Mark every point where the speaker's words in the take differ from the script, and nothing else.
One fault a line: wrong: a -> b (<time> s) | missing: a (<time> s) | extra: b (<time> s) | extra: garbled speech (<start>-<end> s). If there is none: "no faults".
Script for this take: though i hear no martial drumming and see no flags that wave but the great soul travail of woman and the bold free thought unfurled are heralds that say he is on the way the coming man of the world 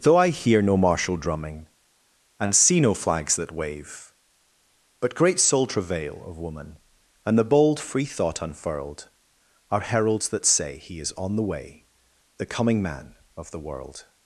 missing: the (5.1 s)